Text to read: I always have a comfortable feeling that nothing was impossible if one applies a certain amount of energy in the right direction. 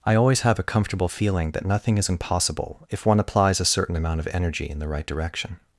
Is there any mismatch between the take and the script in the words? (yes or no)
yes